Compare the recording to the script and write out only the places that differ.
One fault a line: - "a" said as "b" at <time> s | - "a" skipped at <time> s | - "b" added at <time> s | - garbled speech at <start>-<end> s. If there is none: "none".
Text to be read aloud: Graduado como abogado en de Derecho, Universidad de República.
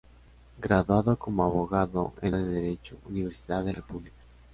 none